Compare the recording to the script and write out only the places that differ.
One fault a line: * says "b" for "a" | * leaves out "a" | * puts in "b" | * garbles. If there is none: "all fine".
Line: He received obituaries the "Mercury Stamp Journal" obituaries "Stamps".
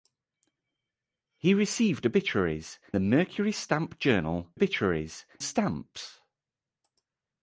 all fine